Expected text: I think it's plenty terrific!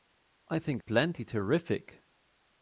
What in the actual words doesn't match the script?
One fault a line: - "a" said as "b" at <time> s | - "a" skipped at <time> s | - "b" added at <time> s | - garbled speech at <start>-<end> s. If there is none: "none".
- "it's" skipped at 0.8 s